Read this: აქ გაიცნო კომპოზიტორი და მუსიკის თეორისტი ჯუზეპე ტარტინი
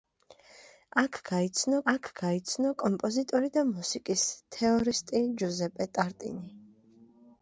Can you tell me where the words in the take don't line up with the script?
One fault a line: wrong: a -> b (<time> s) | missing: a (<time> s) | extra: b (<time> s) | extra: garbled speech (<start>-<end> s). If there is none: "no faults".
extra: აქ გაიცნო (1.9 s)